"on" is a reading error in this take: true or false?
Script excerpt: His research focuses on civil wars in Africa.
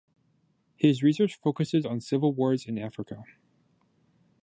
false